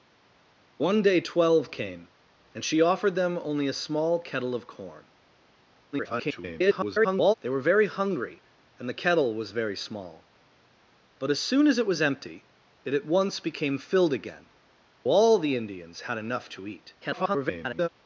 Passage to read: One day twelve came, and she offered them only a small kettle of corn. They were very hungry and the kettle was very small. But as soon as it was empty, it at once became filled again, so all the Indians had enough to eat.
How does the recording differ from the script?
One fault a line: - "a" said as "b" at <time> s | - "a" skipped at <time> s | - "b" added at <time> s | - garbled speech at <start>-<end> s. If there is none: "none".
- garbled speech at 5.9-7.3 s
- "so" skipped at 14.5 s
- garbled speech at 17.0-17.9 s